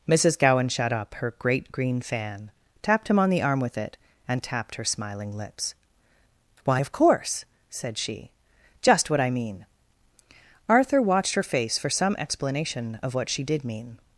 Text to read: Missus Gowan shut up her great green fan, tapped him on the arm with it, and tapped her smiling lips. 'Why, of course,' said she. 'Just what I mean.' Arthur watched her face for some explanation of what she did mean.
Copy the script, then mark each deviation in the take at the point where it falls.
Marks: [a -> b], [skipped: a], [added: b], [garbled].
Missus Gowan shut up her great green fan, tapped him on the arm with it, and tapped her smiling lips. 'Why, of course,' said she. 'Just what I mean.' Arthur watched her face for some explanation of what she did mean.